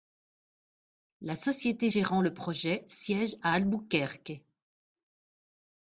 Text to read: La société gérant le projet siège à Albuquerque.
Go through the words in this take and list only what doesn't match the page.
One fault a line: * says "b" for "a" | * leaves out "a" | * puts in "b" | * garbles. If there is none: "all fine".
all fine